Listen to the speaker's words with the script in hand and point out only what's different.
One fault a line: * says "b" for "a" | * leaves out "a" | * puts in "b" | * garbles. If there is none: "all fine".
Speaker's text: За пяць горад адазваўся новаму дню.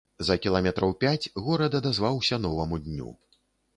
* puts in "кіламетраў"